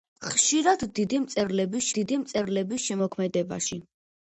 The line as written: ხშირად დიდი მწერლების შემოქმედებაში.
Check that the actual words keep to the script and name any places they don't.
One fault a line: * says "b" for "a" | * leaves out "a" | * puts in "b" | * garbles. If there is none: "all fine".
* puts in "დიდი მწერლების"